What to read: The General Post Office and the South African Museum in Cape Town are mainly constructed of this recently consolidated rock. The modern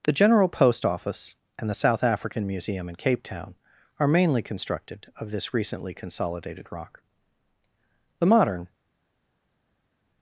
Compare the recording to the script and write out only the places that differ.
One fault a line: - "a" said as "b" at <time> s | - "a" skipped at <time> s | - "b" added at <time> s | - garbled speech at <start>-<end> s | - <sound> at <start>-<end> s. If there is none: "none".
none